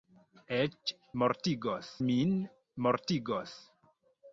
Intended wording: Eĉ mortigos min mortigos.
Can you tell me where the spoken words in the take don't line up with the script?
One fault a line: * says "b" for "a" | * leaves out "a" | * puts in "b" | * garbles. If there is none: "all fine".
all fine